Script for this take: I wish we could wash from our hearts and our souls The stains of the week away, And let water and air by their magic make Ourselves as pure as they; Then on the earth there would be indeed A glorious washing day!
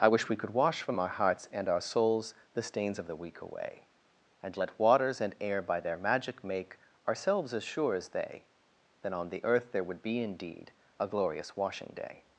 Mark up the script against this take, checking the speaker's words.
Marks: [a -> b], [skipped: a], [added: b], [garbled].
I wish we could wash from our hearts and our souls The stains of the week away, And let [water -> waters] and air by their magic make Ourselves as [pure -> sure] as they; Then on the earth there would be indeed A glorious washing day!